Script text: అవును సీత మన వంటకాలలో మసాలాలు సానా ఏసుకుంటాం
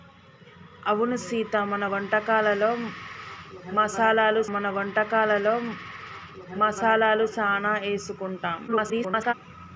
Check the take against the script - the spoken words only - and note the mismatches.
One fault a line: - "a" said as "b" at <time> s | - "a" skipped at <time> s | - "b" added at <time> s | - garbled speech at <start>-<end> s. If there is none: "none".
- "మన వంటకాలలో మసాలాలు" added at 4.5 s
- garbled speech at 8.7-9.3 s